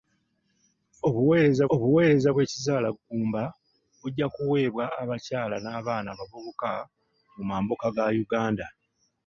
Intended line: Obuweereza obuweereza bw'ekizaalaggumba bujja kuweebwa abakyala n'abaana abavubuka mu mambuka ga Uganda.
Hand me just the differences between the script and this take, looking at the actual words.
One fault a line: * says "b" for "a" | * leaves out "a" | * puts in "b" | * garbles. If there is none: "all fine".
all fine